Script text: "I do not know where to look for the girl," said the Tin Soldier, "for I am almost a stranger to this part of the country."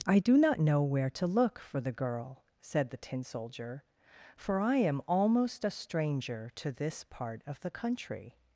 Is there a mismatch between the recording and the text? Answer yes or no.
no